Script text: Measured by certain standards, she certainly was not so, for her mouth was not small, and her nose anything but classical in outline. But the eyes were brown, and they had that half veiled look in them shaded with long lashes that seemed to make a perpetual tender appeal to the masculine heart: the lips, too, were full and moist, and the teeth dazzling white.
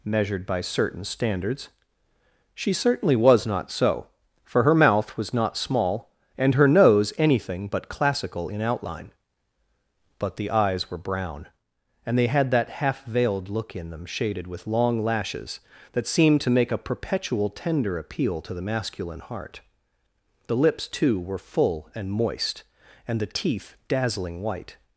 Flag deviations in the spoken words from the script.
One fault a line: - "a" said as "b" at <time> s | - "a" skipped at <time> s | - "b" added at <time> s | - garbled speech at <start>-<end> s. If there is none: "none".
none